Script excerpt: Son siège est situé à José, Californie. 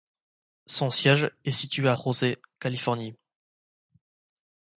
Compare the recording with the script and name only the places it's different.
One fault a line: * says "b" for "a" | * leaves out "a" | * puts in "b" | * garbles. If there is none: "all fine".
all fine